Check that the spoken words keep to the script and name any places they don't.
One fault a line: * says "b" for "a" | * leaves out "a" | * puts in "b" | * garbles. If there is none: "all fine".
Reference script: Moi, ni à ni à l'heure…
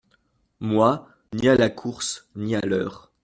* puts in "la course"